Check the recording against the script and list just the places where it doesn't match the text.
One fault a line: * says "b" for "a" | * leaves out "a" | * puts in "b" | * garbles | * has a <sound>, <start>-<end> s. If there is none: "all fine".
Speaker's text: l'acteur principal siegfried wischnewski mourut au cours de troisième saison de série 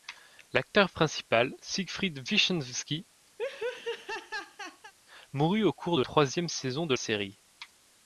* has a laugh, 3.4-4.9 s